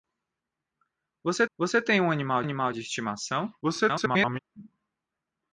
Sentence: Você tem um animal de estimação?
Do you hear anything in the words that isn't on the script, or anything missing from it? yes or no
yes